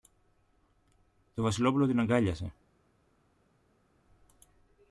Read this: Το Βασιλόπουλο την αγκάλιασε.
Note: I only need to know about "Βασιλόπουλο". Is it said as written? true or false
true